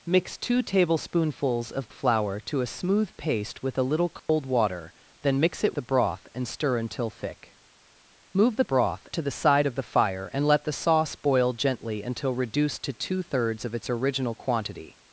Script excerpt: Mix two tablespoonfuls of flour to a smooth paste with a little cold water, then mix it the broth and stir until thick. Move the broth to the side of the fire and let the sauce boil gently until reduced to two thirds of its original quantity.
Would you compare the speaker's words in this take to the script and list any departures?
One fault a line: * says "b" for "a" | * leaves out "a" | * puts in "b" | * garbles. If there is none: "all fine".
all fine